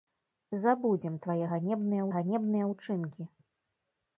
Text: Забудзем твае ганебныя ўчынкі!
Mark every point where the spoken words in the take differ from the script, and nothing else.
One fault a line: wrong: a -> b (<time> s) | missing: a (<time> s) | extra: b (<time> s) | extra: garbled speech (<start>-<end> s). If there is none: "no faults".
extra: ганебныя (2.1 s)